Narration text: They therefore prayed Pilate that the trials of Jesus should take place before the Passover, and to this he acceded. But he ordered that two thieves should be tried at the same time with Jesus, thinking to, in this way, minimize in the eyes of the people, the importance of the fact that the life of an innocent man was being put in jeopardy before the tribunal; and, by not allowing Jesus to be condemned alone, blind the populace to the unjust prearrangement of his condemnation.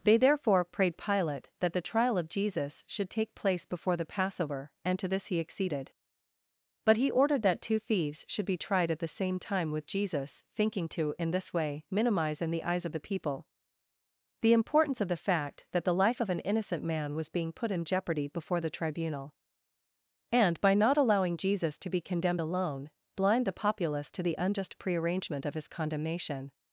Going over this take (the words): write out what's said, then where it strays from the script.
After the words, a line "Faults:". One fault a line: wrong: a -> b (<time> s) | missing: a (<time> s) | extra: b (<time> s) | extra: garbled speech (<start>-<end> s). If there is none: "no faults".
They therefore prayed Pilate that the trial of Jesus should take place before the Passover, and to this he acceded. But he ordered that two thieves should be tried at the same time with Jesus, thinking to, in this way, minimize in the eyes of the people, the importance of the fact that the life of an innocent man was being put in jeopardy before the tribunal; and, by not allowing Jesus to be condemned alone, blind the populace to the unjust prearrangement of his condemnation.
Faults:
wrong: trials -> trial (1.8 s)